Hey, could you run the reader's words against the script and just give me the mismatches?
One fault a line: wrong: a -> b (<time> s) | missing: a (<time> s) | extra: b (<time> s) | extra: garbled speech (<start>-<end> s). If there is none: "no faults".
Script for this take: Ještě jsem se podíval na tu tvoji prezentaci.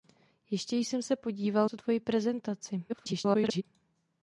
missing: na (1.7 s)
extra: garbled speech (2.9-3.6 s)